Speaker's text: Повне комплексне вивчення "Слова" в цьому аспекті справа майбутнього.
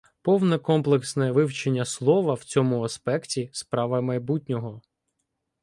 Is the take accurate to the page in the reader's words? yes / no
yes